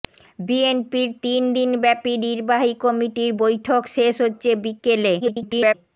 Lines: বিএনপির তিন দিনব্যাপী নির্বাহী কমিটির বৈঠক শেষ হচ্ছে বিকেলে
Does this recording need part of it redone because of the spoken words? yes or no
yes